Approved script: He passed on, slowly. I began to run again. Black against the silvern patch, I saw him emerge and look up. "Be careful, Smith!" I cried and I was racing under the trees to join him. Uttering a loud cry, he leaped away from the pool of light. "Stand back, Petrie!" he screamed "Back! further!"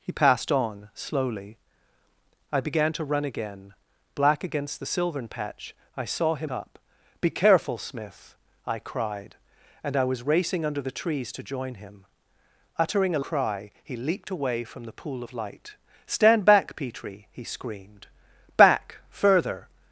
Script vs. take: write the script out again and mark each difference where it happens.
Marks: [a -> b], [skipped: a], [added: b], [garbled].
He passed on, slowly. I began to run again. Black against the silvern patch, I saw him [skipped: emerge and look] up. "Be careful, Smith!" I cried and I was racing under the trees to join him. Uttering a [skipped: loud] cry, he leaped away from the pool of light. "Stand back, Petrie!" he screamed "Back! further!"